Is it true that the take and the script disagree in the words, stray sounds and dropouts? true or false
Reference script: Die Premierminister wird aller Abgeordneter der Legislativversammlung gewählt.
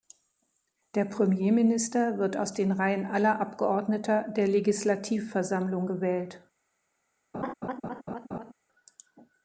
true